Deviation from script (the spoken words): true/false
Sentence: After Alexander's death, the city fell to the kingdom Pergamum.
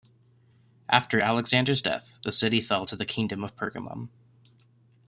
true